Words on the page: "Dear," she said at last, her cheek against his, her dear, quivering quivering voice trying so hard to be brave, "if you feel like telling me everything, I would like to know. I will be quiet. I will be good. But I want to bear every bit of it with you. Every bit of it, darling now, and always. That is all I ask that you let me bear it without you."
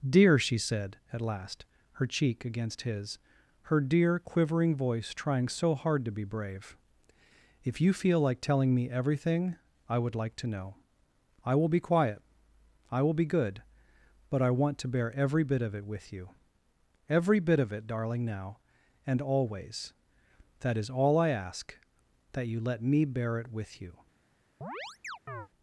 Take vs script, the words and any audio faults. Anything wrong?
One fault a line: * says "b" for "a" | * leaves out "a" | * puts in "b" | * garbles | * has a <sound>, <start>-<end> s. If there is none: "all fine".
* leaves out "quivering"
* says "with" for "without"
* has a chirp, 24.6-25.5 s